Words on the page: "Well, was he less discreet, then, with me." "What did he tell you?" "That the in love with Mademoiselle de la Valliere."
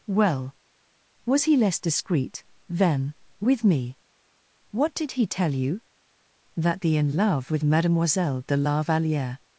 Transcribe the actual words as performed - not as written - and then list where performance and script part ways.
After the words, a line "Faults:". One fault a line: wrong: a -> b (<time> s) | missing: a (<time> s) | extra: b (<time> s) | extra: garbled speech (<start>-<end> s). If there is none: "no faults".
"Well, was he less discreet, then, with me." "What did he tell you?" "That the in love with Mademoiselle de la Valliere."
Faults:
no faults